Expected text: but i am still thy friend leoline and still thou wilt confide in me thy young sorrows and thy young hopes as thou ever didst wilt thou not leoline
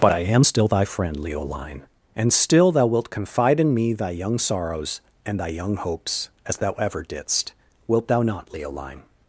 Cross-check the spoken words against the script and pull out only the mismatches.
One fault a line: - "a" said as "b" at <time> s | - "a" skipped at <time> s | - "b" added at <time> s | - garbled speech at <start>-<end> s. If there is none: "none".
none